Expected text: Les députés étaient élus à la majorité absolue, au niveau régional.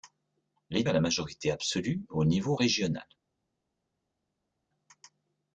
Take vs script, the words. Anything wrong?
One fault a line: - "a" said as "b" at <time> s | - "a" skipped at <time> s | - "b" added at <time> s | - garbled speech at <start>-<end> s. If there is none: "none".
- "députés étaient élus" skipped at 0.8 s